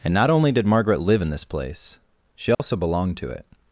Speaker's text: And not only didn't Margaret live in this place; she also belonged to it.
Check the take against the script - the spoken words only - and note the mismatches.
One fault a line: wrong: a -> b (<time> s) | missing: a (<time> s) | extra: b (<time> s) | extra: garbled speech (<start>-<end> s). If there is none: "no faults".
wrong: didn't -> did (0.5 s)